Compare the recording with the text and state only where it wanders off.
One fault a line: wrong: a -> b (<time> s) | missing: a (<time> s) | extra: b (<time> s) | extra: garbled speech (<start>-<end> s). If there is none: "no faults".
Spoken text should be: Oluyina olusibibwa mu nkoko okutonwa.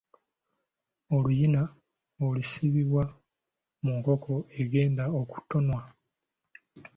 extra: egenda (4.6 s)